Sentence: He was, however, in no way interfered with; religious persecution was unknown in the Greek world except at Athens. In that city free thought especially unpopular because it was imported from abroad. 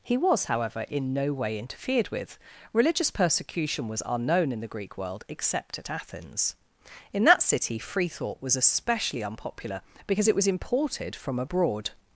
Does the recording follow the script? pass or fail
fail